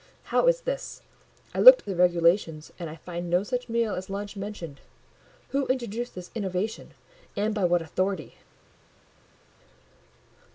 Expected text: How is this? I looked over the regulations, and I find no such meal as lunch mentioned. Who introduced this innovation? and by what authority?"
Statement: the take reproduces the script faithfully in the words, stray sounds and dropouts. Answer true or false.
false